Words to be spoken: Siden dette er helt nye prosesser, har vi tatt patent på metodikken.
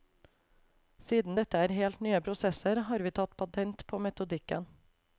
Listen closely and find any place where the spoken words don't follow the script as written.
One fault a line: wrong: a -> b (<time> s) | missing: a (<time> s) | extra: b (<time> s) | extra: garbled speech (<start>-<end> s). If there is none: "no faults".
no faults